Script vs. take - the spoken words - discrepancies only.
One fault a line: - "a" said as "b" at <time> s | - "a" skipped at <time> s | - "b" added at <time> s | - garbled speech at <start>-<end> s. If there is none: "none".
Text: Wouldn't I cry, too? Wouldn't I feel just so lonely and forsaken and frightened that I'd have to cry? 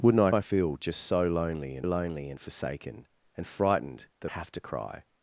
- "cry too Wouldn't" skipped at 0.3 s
- "lonely and" added at 1.8 s
- "I'd" skipped at 4.3 s